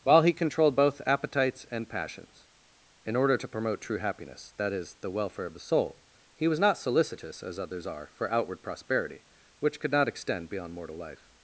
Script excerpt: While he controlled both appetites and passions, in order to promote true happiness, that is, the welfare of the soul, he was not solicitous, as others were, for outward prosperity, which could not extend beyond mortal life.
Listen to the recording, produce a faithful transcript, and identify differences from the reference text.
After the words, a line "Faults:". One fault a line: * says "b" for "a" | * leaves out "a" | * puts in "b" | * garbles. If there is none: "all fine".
While he controlled both appetites and passions, in order to promote true happiness, that is, the welfare of the soul, he was not solicitous, as others are, for outward prosperity, which could not extend beyond mortal life.
Faults:
* says "are" for "were"